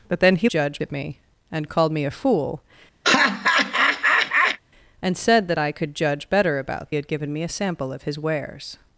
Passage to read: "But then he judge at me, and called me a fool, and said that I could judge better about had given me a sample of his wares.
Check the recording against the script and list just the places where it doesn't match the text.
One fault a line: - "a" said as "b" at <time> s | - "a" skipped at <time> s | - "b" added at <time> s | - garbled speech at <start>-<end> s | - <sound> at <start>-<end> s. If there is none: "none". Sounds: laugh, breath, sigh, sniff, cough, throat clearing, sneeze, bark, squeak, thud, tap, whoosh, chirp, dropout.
- laugh at 3.0-4.6 s